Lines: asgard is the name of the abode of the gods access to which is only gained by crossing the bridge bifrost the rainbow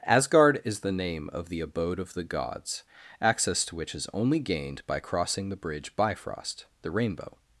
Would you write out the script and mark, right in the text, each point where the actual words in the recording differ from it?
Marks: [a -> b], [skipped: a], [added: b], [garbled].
asgard is the name of the abode of the gods access to which is only gained by crossing the bridge bifrost the rainbow